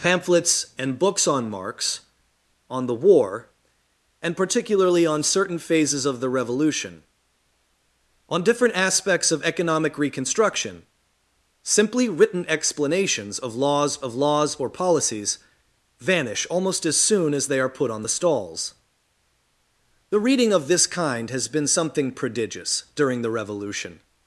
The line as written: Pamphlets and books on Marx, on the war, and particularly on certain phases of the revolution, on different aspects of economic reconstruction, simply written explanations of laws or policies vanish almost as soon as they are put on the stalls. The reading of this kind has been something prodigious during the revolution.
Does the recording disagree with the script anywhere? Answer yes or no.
yes